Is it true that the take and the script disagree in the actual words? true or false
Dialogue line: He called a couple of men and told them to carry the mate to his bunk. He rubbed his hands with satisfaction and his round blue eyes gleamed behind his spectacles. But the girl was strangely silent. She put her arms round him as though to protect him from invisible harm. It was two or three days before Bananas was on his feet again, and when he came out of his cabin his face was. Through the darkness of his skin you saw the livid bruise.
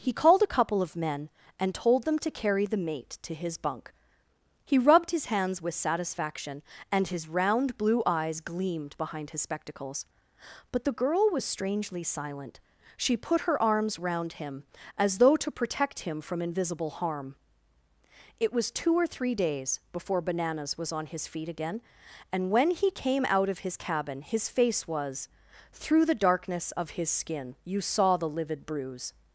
false